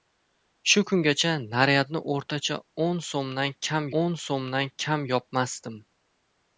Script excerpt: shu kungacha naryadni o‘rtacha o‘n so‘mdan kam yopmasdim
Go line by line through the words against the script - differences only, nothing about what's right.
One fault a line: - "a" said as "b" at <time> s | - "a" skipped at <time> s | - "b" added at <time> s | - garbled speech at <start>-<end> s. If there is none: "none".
- "o‘n so‘mdan kam" added at 4.0 s